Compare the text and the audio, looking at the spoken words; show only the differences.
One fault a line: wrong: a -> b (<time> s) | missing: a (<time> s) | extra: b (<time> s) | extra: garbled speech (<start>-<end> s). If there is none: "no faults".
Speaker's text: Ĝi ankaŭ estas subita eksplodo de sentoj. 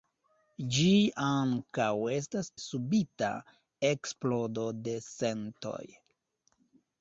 no faults